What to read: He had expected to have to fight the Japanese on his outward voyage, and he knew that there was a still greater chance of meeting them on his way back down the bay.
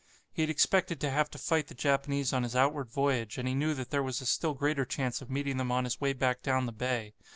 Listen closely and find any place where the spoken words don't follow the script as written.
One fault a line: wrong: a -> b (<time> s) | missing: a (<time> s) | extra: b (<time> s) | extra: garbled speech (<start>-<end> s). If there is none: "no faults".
no faults